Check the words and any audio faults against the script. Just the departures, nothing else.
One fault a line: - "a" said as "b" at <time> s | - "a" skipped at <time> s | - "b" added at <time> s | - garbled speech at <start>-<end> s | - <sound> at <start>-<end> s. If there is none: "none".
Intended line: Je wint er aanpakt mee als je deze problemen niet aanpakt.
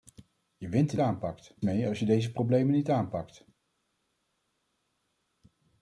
none